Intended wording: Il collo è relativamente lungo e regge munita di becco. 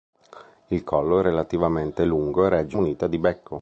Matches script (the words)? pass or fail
pass